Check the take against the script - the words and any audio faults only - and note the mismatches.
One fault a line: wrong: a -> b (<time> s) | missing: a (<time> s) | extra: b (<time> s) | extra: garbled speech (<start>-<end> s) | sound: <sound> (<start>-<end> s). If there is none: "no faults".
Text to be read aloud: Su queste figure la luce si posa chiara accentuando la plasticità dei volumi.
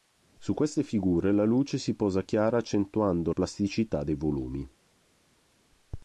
missing: la (3.3 s)